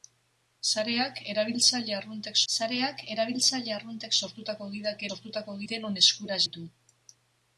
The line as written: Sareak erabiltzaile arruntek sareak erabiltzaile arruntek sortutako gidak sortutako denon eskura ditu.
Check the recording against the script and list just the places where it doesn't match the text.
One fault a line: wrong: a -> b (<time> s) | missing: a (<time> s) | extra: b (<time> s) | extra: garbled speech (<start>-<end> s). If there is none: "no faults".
no faults